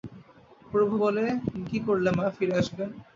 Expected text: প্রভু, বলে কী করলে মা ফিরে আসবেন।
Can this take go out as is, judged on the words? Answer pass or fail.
pass